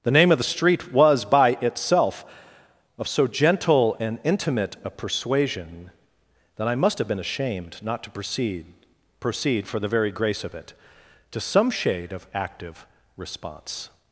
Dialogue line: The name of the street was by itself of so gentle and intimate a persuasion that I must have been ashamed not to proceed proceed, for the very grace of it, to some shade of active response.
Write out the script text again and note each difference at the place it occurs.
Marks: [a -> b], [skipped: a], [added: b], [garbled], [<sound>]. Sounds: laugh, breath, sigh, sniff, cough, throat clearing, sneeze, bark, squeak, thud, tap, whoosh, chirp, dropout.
The name of the street was by itself of so gentle and intimate a persuasion that I must have been ashamed not to proceed proceed, for the very grace of it, to some shade of active response.